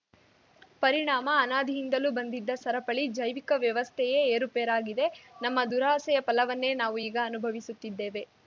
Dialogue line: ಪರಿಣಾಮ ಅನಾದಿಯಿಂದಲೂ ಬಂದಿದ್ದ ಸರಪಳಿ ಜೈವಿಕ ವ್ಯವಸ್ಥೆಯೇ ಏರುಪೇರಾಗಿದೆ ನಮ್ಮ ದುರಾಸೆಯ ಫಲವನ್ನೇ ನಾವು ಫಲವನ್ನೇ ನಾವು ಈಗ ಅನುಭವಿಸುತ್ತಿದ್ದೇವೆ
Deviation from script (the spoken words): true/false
true